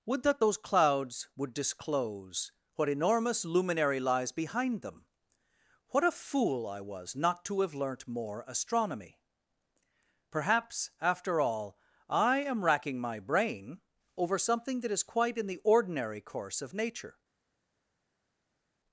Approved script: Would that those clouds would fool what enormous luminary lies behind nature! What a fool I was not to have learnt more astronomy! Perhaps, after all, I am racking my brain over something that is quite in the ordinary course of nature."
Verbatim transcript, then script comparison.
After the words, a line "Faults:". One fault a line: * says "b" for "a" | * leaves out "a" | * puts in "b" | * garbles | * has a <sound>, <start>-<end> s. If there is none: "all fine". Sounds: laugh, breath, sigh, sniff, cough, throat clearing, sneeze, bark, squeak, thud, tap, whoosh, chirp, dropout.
Would that those clouds would disclose what enormous luminary lies behind them! What a fool I was not to have learnt more astronomy! Perhaps, after all, I am racking my brain over something that is quite in the ordinary course of nature."
Faults:
* says "disclose" for "fool"
* says "them" for "nature"